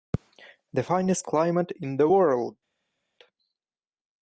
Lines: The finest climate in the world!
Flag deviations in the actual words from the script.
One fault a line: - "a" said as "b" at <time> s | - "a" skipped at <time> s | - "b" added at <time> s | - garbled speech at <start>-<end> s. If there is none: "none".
none